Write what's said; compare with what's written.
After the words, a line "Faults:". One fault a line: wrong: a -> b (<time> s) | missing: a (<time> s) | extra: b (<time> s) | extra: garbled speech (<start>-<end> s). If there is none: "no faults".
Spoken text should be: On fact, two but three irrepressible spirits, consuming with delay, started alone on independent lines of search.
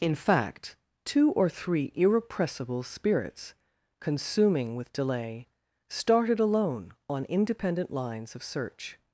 In fact, two or three irrepressible spirits, consuming with delay, started alone on independent lines of search.
Faults:
wrong: On -> In (0.0 s)
wrong: but -> or (1.3 s)